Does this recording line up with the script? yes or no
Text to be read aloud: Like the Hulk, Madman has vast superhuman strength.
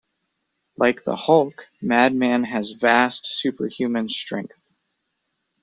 yes